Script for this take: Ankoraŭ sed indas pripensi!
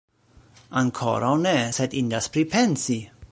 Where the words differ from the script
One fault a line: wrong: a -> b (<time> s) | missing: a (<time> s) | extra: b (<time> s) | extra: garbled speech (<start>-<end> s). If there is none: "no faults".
extra: ne (1.4 s)